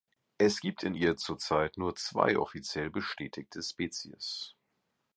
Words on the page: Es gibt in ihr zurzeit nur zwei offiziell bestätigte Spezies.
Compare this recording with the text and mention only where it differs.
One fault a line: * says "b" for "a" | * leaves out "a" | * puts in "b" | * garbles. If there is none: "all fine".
all fine